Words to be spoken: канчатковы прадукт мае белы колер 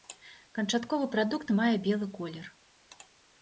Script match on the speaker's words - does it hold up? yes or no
yes